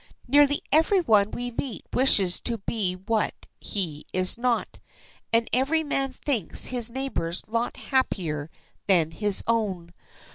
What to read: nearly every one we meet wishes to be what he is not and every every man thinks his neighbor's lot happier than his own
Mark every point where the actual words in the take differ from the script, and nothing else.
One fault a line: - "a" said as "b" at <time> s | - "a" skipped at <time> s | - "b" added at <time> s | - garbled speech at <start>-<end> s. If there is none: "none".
- "every" skipped at 5.8 s